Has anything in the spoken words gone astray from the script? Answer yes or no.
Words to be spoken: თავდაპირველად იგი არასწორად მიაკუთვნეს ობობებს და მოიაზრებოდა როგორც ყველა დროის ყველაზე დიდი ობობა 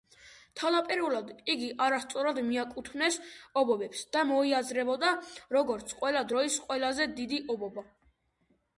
no